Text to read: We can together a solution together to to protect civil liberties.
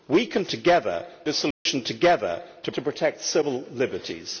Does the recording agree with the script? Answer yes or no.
yes